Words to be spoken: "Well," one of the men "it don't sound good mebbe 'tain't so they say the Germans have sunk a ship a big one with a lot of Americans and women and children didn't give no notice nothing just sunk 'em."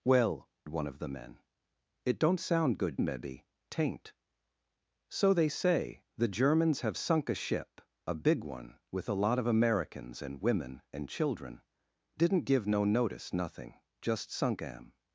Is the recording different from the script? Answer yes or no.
no